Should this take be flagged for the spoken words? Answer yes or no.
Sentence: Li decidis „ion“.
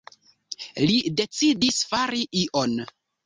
yes